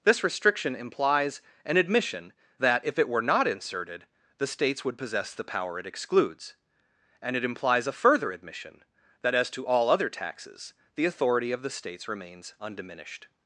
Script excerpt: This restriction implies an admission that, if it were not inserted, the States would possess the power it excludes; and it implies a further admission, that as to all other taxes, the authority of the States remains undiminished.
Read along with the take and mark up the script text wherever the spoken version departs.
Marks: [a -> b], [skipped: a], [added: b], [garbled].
This restriction implies an admission that, if it were not inserted, the States would possess the power it excludes; and it implies a further admission, that as to all other taxes, the authority of the States remains undiminished.